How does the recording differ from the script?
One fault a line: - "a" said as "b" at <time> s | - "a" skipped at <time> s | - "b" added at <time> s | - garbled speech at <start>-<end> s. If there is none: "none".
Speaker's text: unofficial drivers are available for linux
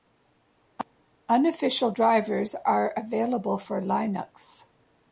none